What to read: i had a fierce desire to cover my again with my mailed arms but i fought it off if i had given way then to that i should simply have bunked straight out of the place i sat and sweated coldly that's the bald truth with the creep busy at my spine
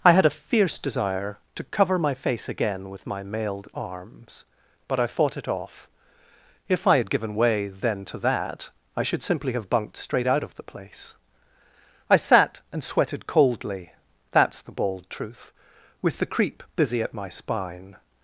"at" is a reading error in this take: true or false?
false